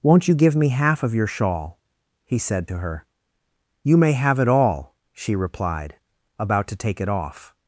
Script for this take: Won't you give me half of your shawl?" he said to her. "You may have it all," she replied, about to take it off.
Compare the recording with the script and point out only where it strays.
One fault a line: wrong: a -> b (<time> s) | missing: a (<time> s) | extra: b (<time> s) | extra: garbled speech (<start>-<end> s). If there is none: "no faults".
no faults